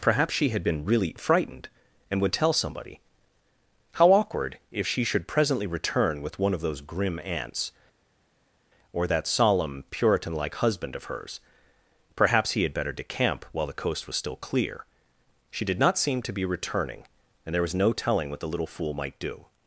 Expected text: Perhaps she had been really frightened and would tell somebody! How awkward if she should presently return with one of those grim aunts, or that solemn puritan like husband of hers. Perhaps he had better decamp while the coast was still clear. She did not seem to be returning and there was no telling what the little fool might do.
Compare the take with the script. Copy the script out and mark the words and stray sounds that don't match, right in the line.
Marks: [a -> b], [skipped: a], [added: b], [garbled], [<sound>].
Perhaps she had been really frightened and would tell somebody! How awkward if she should presently return with one of those grim aunts, or that solemn puritan like husband of hers. Perhaps he had better decamp while the coast was still clear. She did not seem to be returning and there was no telling what the little fool might do.